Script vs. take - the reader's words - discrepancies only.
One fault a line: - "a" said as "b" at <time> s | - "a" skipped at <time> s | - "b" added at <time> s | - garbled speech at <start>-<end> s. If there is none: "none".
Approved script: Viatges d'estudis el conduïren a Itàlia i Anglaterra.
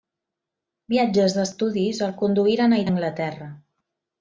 - "Itàlia" skipped at 2.8 s